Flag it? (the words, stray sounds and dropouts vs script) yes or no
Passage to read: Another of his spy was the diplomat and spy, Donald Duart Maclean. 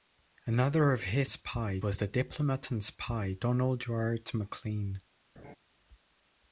yes